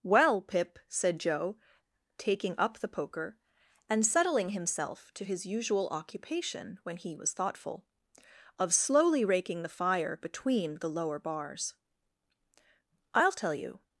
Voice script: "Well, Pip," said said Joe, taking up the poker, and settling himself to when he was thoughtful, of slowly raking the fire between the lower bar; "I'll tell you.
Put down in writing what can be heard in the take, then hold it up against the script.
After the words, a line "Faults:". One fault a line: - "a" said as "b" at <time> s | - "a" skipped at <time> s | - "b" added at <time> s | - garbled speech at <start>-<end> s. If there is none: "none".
"Well, Pip," said Joe, taking up the poker, and settling himself to his usual occupation when he was thoughtful, of slowly raking the fire between the lower bars; "I'll tell you.
Faults:
- "said" skipped at 1.2 s
- "his usual occupation" added at 5.2 s
- "bar" said as "bars" at 11.2 s